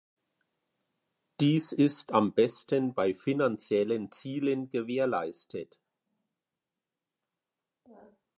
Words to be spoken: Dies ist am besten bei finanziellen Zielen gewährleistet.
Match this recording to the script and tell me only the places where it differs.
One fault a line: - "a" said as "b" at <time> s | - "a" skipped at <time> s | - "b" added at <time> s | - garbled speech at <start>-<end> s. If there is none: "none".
none